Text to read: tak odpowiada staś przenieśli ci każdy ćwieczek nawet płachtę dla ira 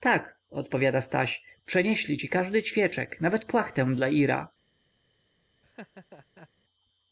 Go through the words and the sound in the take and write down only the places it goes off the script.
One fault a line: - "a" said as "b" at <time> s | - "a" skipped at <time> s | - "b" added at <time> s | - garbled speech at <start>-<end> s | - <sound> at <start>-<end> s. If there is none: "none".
- laugh at 5.6-6.5 s